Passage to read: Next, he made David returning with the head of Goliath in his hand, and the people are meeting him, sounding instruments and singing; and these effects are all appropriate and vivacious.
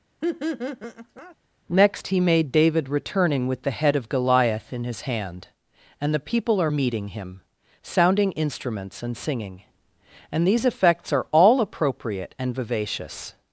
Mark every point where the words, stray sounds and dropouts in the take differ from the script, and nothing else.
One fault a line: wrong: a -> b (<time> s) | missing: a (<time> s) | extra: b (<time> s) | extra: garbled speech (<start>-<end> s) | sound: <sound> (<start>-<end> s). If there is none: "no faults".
sound: laugh (0.2-1.4 s)